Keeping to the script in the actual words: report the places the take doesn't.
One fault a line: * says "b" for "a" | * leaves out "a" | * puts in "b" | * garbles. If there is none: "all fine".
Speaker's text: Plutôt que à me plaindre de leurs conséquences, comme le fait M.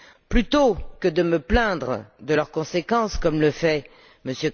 * says "de" for "à"